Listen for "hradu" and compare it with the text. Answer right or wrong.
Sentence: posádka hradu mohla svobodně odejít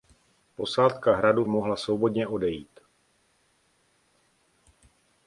right